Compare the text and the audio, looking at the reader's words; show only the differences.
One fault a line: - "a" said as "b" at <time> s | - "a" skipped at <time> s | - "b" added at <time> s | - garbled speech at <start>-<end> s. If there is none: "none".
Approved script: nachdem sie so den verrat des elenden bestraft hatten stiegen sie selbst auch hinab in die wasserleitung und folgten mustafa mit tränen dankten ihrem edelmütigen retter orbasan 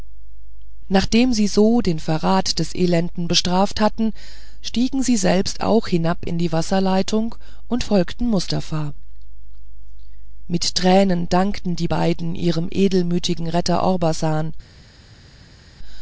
- "die beiden" added at 11.8 s